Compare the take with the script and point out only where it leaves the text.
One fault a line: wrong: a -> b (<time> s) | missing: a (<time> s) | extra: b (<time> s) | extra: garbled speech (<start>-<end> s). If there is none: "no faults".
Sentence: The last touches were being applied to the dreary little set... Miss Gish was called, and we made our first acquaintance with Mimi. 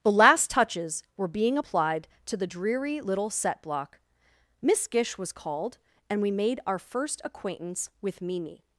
extra: block (3.6 s)